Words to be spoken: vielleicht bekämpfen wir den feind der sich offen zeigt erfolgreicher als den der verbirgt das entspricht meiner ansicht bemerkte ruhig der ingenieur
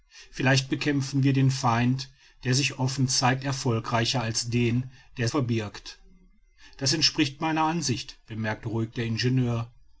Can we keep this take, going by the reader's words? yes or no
yes